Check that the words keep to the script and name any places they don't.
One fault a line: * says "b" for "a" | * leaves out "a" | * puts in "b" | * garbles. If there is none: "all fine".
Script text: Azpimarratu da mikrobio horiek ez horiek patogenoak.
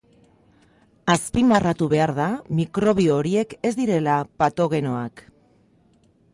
* puts in "behar"
* says "direla" for "horiek"